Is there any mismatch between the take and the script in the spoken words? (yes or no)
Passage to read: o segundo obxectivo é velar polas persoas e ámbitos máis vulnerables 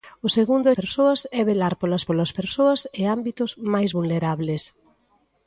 yes